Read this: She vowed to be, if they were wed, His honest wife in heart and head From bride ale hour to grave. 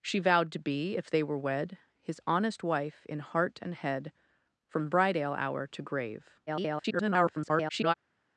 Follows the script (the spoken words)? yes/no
no